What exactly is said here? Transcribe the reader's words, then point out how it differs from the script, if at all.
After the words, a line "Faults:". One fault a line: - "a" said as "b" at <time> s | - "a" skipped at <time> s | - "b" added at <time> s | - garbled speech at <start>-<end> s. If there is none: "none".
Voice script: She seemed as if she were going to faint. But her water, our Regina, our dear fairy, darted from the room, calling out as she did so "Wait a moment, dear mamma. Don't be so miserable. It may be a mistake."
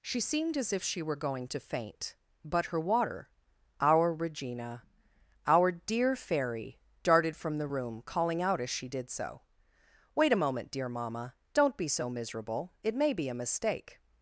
She seemed as if she were going to faint. But her water, our Regina, our dear fairy, darted from the room, calling out as she did so "Wait a moment, dear mamma. Don't be so miserable. It may be a mistake."
Faults:
none